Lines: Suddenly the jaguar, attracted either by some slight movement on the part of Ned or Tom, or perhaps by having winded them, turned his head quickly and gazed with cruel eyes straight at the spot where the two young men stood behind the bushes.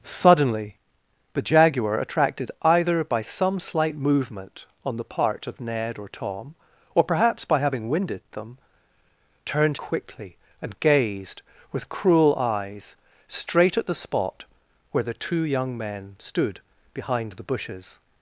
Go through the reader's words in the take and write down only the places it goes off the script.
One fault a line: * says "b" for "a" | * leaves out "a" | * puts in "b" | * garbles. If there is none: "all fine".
* leaves out "his head"